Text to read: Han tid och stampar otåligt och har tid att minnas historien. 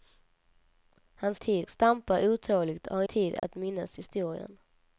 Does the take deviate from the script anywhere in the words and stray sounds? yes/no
yes